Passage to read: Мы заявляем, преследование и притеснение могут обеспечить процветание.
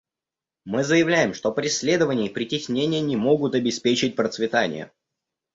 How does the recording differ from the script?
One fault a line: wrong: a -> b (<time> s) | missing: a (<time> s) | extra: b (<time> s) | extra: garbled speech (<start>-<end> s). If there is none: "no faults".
extra: что (1.4 s)
extra: не (3.0 s)